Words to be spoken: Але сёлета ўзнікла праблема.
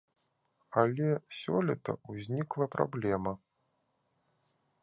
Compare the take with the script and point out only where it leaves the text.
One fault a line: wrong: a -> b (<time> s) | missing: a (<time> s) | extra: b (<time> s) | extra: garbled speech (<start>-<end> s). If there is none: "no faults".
no faults